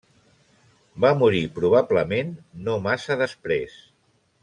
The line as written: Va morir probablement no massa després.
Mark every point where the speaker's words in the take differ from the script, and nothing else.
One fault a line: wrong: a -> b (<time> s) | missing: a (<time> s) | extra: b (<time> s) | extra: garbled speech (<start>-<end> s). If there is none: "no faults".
no faults